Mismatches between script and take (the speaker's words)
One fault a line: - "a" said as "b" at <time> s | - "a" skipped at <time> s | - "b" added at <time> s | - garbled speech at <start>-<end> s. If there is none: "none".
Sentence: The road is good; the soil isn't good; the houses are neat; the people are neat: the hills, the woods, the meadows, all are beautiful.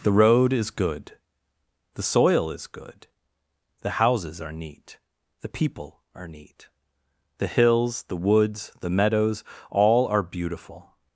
- "isn't" said as "is" at 2.5 s